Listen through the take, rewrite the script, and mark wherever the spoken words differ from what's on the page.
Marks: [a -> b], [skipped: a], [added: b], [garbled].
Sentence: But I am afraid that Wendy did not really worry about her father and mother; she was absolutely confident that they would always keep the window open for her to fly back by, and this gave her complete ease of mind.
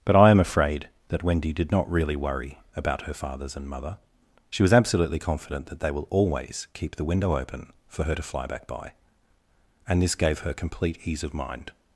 But I am afraid that Wendy did not really worry about her [father -> fathers] and mother; she was absolutely confident that they [would -> will] always keep the window open for her to fly back by, and this gave her complete ease of mind.